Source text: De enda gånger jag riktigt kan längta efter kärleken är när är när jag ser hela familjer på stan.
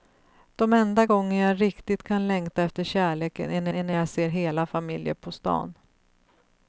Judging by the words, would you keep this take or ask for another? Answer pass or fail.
pass